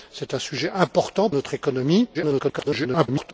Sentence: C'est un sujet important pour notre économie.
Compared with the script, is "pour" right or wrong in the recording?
wrong